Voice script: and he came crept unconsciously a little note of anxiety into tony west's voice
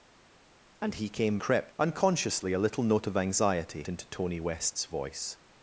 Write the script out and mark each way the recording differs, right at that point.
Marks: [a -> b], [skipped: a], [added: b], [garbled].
and he came crept unconsciously a little note of anxiety into tony west's voice